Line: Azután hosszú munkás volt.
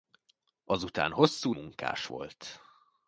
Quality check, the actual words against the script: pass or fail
pass